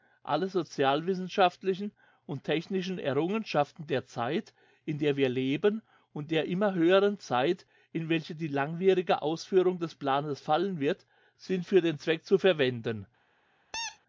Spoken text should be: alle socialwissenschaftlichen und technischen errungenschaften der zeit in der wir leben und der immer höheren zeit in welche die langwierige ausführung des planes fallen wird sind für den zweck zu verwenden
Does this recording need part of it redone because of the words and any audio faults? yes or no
yes